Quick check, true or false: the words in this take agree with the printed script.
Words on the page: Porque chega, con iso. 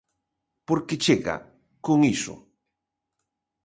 true